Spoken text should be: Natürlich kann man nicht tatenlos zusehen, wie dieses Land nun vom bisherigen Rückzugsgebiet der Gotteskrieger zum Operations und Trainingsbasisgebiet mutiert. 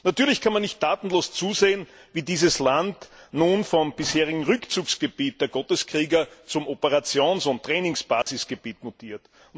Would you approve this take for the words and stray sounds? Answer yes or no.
no